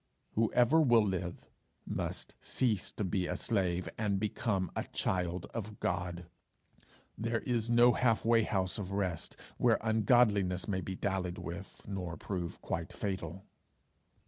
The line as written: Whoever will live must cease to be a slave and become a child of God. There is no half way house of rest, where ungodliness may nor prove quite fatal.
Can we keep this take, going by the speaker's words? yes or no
no